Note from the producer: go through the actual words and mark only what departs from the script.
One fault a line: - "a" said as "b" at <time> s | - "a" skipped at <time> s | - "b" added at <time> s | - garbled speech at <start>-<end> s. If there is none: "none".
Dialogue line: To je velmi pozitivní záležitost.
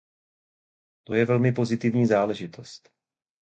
none